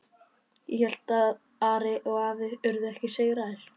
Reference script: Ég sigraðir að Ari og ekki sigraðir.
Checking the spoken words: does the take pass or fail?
fail